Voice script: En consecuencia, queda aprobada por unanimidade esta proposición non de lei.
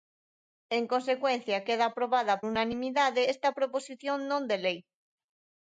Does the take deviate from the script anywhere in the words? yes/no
yes